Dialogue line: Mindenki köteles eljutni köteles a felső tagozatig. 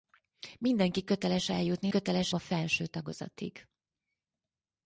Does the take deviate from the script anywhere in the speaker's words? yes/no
no